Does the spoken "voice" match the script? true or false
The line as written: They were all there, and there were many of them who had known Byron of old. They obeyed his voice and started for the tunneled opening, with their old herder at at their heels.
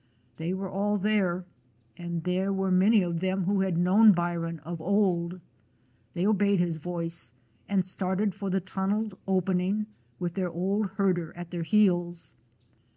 true